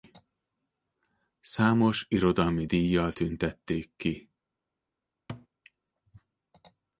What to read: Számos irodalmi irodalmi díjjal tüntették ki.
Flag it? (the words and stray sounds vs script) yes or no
yes